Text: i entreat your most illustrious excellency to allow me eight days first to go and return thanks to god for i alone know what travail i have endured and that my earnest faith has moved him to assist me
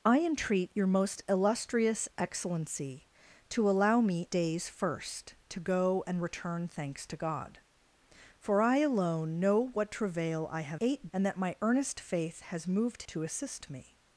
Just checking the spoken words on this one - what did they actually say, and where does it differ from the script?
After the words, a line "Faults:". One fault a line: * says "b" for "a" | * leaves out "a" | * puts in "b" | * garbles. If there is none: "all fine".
i entreat your most illustrious excellency to allow me days first to go and return thanks to god for i alone know what travail i have eight and that my earnest faith has moved to assist me
Faults:
* leaves out "eight"
* says "eight" for "endured"
* leaves out "him"